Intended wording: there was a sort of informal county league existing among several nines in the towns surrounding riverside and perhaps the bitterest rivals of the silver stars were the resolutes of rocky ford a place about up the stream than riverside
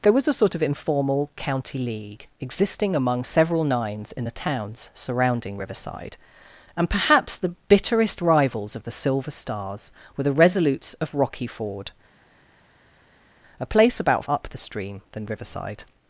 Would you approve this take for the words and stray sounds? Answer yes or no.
yes